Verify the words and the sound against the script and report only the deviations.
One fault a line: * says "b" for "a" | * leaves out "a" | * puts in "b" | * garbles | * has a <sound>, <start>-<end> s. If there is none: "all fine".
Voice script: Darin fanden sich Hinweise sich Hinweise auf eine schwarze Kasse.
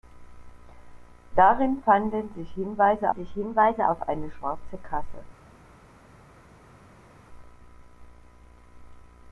all fine